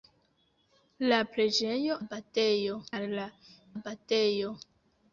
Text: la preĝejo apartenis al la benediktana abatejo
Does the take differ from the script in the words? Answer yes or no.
yes